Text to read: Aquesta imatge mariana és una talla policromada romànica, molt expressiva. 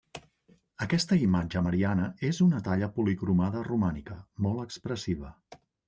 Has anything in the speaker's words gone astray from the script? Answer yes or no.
no